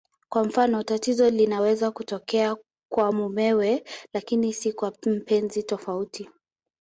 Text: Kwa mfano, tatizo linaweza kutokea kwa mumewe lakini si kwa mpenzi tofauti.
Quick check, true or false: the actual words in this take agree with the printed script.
true